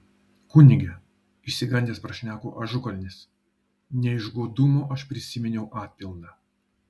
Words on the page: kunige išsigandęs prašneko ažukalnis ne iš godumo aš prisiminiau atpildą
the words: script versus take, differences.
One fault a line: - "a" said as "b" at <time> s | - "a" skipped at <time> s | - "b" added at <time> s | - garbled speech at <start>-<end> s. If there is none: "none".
none